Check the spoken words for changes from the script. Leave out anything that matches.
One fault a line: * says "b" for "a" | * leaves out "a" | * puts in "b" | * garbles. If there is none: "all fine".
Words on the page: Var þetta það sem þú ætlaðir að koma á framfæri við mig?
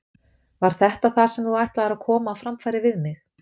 all fine